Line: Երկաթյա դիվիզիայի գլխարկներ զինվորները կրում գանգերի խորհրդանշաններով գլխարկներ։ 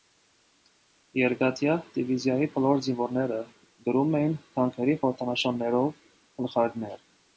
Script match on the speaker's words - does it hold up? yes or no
no